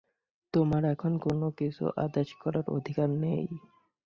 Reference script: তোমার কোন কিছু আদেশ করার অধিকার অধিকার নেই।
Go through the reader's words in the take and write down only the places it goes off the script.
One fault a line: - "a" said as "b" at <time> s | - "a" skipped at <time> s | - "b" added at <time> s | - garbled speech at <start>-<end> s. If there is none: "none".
- "এখন" added at 0.9 s
- "অধিকার" skipped at 3.1 s